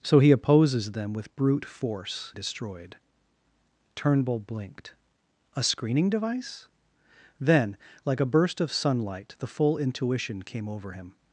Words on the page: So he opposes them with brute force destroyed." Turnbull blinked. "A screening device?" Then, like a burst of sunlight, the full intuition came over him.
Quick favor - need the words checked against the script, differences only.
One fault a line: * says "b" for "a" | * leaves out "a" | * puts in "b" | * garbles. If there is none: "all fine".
all fine